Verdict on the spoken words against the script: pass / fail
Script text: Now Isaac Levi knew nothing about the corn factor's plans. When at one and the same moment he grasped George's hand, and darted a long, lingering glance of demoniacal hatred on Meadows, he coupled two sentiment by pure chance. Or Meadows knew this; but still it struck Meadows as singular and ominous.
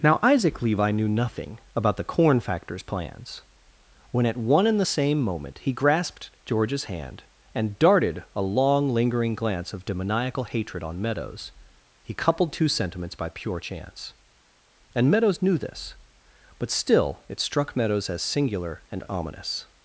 fail